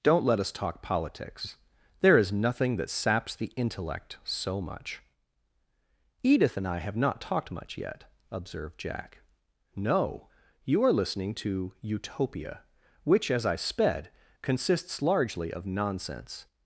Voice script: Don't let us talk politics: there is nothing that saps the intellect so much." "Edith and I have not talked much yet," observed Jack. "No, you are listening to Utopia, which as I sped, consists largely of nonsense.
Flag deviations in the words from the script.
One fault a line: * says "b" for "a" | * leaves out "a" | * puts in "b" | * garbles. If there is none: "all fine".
all fine